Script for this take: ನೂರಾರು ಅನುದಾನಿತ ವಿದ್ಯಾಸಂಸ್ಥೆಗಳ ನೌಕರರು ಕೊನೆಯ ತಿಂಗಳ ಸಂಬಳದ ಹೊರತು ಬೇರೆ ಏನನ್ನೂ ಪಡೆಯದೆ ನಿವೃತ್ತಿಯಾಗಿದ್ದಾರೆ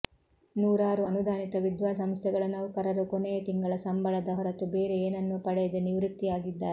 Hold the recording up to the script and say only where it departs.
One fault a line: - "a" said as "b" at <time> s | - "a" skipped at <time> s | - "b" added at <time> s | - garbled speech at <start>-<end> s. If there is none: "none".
none